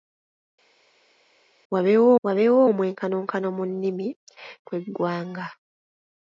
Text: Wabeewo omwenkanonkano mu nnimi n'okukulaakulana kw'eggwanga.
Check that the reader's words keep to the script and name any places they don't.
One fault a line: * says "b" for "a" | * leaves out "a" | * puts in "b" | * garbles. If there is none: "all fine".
* puts in "wabeewo"
* leaves out "n'okukulaakulana"